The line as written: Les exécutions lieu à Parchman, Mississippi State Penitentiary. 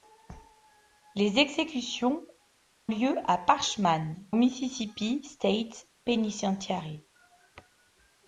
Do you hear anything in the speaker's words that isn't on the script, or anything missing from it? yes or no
no